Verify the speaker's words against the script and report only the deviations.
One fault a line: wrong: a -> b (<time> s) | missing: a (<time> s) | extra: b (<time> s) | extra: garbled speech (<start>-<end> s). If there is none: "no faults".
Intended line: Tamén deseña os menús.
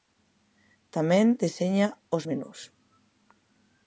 no faults